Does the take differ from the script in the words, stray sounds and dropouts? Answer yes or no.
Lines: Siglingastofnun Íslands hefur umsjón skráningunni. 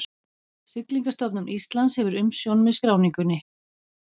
yes